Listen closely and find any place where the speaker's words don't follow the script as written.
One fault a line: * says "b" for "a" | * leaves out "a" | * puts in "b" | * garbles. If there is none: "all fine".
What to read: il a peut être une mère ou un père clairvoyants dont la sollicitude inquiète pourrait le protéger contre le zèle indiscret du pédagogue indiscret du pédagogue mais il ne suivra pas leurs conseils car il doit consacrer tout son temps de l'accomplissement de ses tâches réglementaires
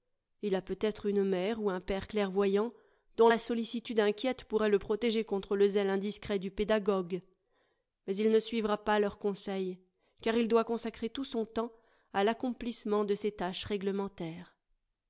* leaves out "indiscret du pédagogue"
* says "à" for "de"